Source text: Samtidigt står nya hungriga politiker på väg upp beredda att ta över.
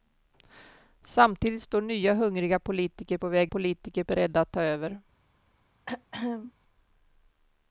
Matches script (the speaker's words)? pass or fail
fail